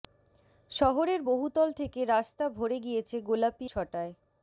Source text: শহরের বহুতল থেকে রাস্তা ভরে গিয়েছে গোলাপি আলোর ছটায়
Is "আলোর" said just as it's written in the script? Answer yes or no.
no